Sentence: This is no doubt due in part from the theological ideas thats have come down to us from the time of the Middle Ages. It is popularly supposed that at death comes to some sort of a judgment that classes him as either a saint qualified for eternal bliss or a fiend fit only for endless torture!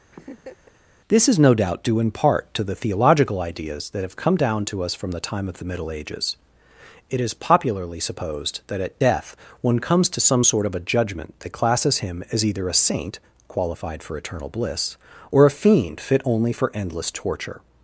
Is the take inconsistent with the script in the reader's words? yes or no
yes